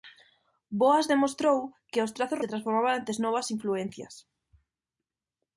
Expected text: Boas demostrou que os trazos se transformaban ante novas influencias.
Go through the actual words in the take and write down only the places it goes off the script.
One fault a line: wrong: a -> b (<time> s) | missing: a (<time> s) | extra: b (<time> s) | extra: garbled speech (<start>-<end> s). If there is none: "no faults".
no faults